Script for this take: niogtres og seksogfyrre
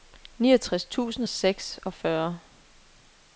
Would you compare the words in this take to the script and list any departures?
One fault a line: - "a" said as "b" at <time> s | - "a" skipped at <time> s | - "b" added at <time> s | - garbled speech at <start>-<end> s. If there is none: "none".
- "tusind" added at 0.8 s